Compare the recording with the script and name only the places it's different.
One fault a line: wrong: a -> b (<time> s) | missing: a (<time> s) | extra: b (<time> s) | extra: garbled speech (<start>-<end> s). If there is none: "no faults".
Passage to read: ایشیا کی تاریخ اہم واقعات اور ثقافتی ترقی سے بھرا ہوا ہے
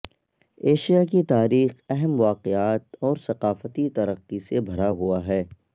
no faults